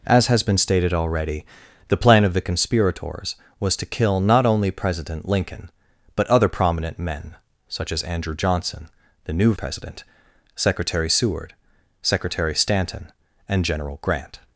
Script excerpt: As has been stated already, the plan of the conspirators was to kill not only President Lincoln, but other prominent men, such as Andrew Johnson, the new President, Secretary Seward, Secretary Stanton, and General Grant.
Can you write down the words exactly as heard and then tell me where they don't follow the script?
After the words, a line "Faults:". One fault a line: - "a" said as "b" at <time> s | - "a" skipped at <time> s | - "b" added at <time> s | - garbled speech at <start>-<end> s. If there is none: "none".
As has been stated already, the plan of the conspirators was to kill not only President Lincoln, but other prominent men, such as Andrew Johnson, the new President, Secretary Seward, Secretary Stanton, and General Grant.
Faults:
none